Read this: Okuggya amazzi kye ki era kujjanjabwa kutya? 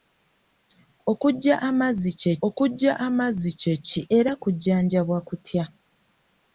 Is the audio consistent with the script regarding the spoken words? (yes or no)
no